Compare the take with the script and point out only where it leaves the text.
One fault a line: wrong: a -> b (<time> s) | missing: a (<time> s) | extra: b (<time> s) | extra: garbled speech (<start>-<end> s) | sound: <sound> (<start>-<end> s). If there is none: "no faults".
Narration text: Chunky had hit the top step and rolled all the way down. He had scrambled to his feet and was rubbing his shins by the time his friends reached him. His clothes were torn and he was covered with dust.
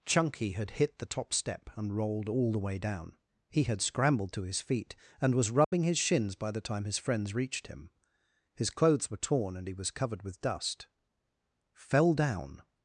sound: dropout (5.6-5.7 s)
extra: Fell down (11.7 s)